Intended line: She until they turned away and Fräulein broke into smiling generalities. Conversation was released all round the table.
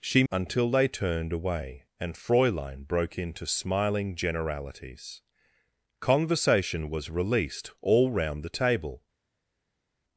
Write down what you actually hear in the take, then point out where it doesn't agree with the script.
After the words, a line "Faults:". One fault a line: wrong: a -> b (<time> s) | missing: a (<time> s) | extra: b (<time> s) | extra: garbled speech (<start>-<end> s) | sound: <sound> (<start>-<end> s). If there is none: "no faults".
She until they turned away and Fräulein broke into smiling generalities. Conversation was released all round the table.
Faults:
no faults